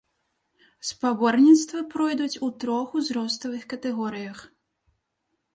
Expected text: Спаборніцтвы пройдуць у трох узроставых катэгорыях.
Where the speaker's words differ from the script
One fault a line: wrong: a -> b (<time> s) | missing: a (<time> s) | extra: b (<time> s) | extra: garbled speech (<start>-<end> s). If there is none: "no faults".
no faults